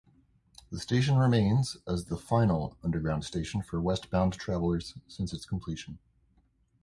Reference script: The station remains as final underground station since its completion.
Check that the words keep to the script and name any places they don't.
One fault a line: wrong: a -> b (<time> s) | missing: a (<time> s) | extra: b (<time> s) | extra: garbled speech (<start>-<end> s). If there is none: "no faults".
extra: the (2.0 s)
extra: for westbound travelers (3.6 s)